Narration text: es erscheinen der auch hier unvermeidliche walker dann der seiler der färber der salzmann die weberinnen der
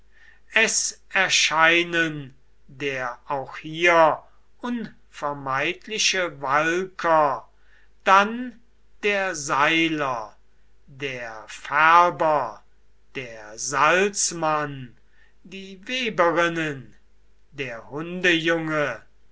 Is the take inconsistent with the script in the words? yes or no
no